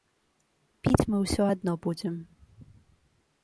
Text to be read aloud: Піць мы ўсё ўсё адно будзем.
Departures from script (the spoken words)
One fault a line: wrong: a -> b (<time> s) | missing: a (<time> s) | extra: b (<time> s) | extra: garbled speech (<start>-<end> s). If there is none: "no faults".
missing: ўсё (1.4 s)